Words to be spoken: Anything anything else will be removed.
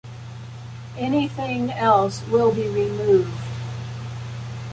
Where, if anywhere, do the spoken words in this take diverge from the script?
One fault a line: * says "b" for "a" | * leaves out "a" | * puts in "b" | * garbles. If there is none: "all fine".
* leaves out "anything"